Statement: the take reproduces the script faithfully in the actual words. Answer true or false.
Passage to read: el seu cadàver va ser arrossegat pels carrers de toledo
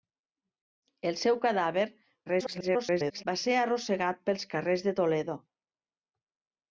false